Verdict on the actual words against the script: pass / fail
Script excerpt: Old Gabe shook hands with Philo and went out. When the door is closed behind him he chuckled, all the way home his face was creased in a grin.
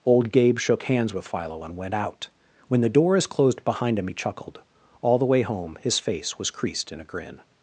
pass